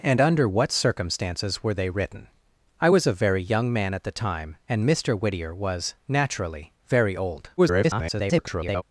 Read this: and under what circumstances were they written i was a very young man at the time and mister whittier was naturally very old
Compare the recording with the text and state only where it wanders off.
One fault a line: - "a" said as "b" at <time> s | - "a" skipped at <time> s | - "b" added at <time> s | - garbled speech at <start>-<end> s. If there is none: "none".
- garbled speech at 7.6-8.8 s